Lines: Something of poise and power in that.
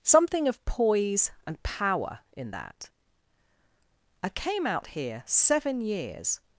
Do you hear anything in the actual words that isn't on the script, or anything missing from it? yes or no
yes